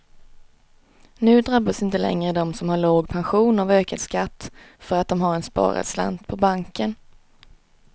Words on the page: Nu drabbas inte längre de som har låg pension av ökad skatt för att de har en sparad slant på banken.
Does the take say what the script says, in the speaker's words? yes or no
yes